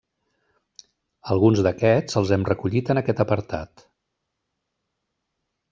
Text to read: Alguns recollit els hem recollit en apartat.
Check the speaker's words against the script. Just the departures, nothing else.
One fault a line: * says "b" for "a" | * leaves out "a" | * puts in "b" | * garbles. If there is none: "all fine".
* says "d'aquests" for "recollit"
* puts in "aquest"